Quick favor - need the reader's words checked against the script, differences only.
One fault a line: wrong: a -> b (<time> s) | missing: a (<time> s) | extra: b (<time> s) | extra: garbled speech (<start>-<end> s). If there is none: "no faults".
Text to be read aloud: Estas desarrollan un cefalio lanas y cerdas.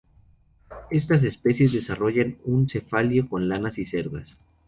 extra: especies (1.2 s)
extra: con (3.3 s)